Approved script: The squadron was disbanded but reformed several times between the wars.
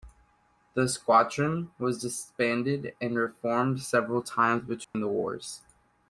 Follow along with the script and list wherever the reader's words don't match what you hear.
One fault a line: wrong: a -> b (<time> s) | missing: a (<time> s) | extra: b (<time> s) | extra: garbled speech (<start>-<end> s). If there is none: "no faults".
wrong: but -> and (3.0 s)